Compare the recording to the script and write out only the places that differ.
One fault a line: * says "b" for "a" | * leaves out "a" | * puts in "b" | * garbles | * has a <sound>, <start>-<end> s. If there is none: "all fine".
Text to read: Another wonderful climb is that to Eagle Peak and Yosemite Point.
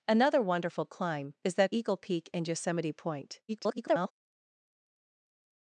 * leaves out "to"
* garbles